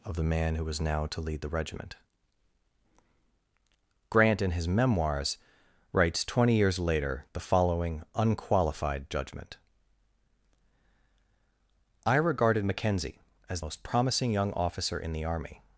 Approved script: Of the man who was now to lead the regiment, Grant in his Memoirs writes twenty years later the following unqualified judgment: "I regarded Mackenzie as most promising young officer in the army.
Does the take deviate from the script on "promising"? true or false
false